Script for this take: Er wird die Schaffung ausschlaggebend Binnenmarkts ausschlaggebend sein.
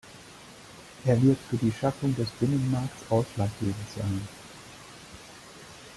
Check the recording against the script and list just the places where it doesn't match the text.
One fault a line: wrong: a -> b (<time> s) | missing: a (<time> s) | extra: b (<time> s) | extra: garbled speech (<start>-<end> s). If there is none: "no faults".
extra: für (1.5 s)
wrong: ausschlaggebend -> des (2.1 s)